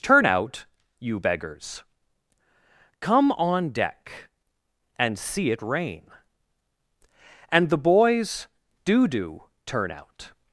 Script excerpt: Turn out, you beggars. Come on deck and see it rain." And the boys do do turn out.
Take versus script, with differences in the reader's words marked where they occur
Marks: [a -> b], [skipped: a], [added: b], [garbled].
Turn out, you beggars. Come on deck and see it rain." And the boys do do turn out.